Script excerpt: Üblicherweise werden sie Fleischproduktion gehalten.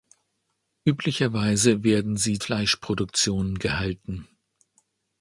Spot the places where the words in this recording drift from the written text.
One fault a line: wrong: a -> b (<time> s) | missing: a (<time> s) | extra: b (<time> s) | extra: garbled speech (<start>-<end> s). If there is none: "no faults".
no faults